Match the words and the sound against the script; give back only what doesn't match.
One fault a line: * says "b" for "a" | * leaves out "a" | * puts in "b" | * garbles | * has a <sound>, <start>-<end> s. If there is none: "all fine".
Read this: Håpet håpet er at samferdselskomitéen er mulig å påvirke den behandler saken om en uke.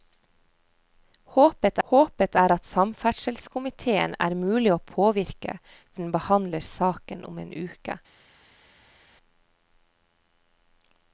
all fine